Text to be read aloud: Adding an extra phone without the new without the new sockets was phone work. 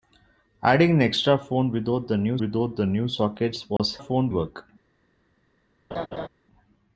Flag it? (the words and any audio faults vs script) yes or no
yes